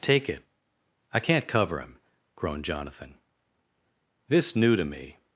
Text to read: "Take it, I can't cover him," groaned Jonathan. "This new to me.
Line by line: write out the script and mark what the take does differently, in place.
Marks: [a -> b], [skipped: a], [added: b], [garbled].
"Take it, I can't cover him," groaned Jonathan. "This new to me.